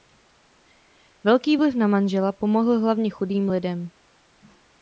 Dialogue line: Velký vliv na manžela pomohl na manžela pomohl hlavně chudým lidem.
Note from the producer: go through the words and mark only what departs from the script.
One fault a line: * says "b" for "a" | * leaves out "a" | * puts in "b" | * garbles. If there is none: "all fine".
* leaves out "na manžela pomohl"